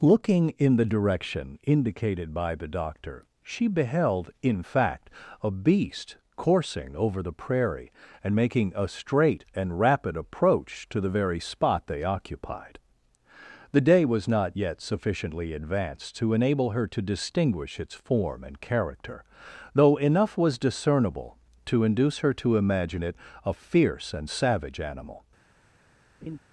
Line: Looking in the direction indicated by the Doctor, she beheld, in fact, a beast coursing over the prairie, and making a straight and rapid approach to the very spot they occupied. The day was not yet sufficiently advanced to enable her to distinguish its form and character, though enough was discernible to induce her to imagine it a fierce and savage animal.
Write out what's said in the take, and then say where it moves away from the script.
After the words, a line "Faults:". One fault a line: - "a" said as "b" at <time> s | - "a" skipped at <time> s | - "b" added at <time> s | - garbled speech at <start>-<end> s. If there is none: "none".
Looking in the direction indicated by the Doctor, she beheld, in fact, a beast coursing over the prairie, and making a straight and rapid approach to the very spot they occupied. The day was not yet sufficiently advanced to enable her to distinguish its form and character, though enough was discernible to induce her to imagine it a fierce and savage animal.
Faults:
none